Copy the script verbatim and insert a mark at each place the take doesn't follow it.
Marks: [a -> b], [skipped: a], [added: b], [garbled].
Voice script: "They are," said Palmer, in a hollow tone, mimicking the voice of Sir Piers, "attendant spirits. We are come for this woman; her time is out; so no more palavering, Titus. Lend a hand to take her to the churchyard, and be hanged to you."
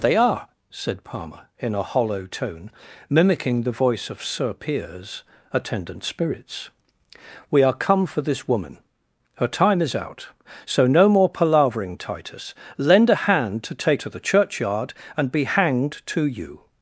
"They are," said Palmer, in a hollow tone, mimicking the voice of Sir Piers, "attendant spirits. We are come for this woman; her time is out; so no more palavering, Titus. Lend a hand to take [skipped: her] to the churchyard, and be hanged to you."